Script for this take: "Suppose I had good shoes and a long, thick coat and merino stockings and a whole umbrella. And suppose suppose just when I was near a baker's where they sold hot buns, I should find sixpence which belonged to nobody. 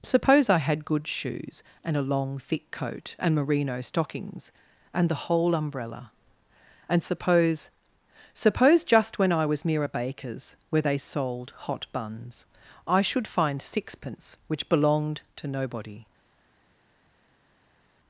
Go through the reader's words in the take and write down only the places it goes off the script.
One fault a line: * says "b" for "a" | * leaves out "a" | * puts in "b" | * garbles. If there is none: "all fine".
* says "the" for "a"